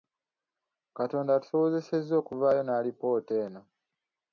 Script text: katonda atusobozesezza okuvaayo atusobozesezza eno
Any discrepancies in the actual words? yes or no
yes